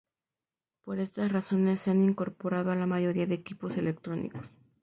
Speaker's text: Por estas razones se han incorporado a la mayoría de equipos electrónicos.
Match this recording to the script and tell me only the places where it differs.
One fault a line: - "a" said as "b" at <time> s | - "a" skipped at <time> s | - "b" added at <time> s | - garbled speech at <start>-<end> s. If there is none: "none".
none